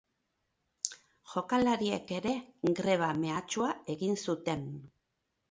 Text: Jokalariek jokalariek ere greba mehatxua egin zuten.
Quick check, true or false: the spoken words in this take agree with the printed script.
false